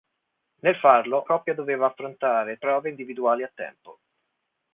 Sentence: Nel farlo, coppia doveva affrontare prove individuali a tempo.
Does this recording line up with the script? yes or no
yes